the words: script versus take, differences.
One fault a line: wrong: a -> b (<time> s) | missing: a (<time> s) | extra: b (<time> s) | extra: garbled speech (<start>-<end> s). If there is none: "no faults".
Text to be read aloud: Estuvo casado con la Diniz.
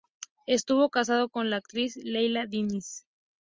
extra: actriz Leila (1.6 s)